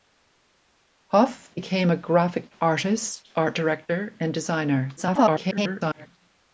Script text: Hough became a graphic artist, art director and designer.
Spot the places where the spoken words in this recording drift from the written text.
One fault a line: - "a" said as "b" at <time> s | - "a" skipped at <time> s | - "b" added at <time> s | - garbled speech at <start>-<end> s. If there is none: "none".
- garbled speech at 5.0-6.1 s